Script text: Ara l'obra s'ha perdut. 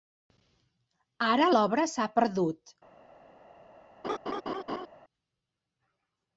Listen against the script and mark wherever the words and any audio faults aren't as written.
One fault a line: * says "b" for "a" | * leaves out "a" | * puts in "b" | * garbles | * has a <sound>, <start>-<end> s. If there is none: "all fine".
* has a laugh, 4.0-4.9 s